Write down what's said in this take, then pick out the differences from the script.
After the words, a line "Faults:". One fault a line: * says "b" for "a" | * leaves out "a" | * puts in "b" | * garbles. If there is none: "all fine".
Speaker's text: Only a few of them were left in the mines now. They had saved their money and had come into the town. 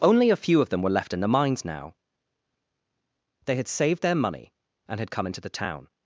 Only a few of them were left in the mines now. They had saved their money and had come into the town.
Faults:
all fine